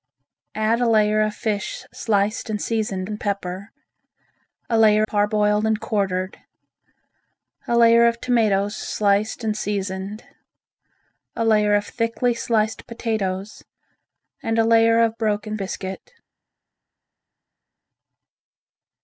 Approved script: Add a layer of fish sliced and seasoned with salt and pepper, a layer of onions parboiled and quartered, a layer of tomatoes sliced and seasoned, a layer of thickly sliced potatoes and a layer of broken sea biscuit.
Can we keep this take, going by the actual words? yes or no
no